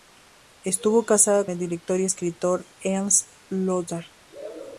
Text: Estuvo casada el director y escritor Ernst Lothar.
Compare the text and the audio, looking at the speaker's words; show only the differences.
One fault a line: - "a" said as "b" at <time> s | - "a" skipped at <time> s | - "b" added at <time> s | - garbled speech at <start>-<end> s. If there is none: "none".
none